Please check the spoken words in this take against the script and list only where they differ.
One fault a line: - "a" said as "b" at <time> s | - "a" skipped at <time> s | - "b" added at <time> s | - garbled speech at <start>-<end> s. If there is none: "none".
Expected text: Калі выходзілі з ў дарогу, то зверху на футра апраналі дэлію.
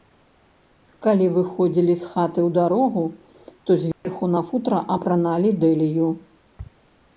- "хаты" added at 2.1 s